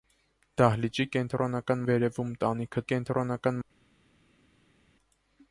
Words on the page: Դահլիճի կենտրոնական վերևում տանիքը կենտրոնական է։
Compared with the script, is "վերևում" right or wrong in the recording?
right